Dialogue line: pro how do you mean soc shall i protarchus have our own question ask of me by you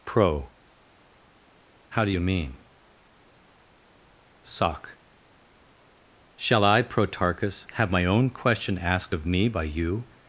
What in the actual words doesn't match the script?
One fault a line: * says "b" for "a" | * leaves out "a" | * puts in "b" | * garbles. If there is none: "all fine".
* says "my" for "our"
* says "asked" for "ask"